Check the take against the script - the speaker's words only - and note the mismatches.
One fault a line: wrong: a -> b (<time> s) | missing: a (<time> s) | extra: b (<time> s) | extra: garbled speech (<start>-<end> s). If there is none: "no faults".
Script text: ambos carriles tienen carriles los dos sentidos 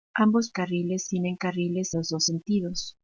no faults